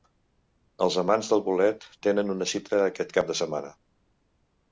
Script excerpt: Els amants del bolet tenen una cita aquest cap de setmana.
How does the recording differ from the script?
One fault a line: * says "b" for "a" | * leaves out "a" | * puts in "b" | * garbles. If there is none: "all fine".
all fine